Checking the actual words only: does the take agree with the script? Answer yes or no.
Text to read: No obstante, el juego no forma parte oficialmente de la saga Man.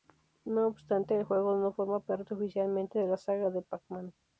no